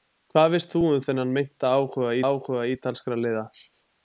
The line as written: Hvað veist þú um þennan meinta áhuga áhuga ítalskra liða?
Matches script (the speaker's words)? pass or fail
pass